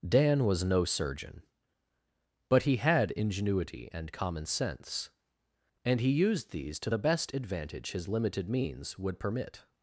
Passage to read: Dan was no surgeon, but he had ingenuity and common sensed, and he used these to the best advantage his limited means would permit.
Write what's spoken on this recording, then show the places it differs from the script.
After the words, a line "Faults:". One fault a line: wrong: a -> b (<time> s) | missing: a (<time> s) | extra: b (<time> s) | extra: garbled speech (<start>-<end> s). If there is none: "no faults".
Dan was no surgeon, but he had ingenuity and common sense, and he used these to the best advantage his limited means would permit.
Faults:
wrong: sensed -> sense (4.5 s)